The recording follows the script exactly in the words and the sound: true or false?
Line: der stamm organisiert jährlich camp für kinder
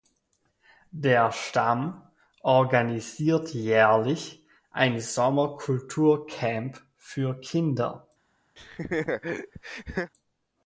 false